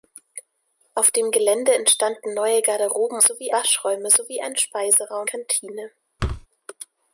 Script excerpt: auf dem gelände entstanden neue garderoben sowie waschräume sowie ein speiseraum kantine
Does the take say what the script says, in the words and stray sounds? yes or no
no